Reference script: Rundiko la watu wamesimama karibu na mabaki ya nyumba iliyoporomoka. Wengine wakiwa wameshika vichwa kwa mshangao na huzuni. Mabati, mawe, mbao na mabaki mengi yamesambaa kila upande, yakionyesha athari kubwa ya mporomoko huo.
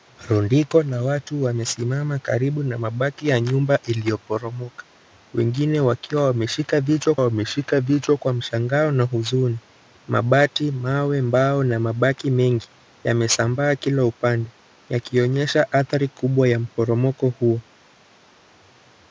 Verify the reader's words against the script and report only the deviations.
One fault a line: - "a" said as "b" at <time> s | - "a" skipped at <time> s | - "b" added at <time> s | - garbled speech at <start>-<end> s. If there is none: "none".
- "wameshika vichwa" added at 7.2 s